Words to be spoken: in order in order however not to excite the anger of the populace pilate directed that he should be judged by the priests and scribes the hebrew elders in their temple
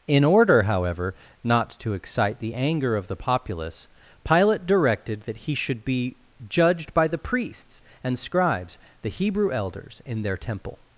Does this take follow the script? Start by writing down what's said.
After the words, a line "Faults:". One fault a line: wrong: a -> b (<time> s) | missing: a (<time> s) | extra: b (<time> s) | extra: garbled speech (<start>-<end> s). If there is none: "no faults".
in order however not to excite the anger of the populace pilate directed that he should be judged by the priests and scribes the hebrew elders in their temple
Faults:
missing: in order (0.6 s)